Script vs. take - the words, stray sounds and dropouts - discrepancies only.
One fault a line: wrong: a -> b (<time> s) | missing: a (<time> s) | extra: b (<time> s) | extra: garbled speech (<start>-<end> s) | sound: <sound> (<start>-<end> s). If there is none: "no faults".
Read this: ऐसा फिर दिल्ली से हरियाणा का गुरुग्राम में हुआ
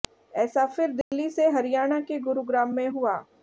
sound: dropout (1.0-1.1 s)
wrong: का -> के (2.0 s)